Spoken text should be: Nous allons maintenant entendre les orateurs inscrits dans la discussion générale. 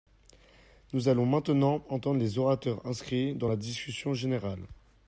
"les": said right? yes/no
yes